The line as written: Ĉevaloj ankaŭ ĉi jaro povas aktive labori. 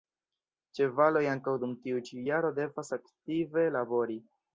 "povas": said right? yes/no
no